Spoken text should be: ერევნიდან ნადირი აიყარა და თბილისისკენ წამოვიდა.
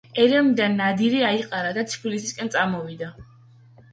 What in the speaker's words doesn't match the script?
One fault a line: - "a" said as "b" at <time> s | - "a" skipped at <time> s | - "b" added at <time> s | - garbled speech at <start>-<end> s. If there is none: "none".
none